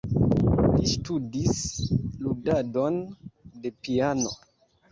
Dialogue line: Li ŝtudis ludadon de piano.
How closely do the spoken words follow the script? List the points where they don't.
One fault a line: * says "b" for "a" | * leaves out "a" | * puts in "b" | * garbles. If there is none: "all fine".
all fine